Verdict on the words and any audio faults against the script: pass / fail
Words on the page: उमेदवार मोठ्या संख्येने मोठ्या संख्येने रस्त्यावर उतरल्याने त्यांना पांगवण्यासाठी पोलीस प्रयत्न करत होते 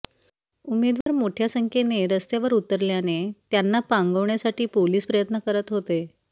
fail